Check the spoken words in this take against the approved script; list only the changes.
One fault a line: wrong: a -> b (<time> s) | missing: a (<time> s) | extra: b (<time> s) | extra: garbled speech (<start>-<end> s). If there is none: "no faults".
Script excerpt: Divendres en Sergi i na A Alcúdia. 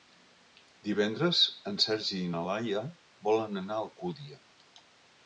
extra: Laia volen anar (2.5 s)